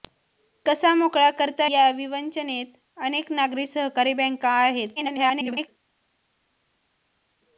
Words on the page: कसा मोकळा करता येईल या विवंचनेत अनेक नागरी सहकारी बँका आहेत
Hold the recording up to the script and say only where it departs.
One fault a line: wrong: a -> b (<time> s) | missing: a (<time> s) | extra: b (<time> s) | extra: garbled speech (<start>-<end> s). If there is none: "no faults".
missing: येईल (1.7 s)
extra: garbled speech (5.0-5.7 s)